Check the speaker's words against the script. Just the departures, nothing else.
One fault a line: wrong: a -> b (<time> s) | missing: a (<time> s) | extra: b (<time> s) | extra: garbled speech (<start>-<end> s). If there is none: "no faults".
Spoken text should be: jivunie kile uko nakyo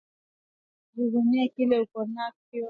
no faults